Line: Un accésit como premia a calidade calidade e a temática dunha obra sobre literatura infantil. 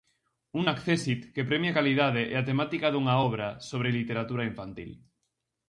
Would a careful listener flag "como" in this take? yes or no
yes